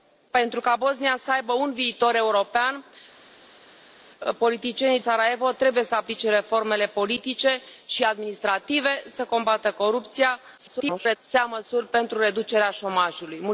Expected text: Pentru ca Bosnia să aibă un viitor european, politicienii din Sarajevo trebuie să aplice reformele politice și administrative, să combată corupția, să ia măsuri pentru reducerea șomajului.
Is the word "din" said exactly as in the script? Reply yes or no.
no